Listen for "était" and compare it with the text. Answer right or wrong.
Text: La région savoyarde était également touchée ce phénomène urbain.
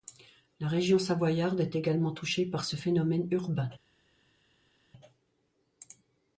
wrong